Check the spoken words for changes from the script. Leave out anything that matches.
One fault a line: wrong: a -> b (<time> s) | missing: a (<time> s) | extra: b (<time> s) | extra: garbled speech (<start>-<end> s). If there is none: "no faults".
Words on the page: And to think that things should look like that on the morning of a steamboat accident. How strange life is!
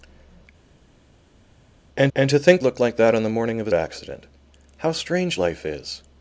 extra: and (2.2 s)
missing: that things should (2.6 s)
missing: steamboat (3.7 s)